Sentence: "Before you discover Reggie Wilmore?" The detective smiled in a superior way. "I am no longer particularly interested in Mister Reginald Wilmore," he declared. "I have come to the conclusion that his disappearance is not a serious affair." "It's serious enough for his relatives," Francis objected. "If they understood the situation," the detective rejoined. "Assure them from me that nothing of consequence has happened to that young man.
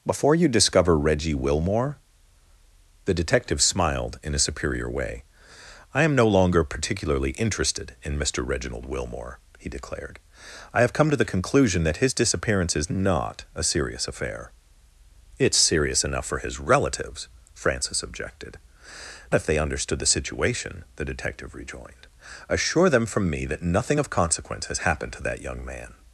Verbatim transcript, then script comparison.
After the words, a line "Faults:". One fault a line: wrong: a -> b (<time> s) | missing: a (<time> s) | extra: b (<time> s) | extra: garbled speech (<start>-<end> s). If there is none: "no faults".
"Before you discover Reggie Wilmore?" The detective smiled in a superior way. "I am no longer particularly interested in Mister Reginald Wilmore," he declared. "I have come to the conclusion that his disappearance is not a serious affair." "It's serious enough for his relatives," Francis objected. "If they understood the situation," the detective rejoined. "Assure them from me that nothing of consequence has happened to that young man.
Faults:
no faults